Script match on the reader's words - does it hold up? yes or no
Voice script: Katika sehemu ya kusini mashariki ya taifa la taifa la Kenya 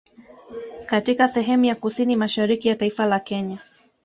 no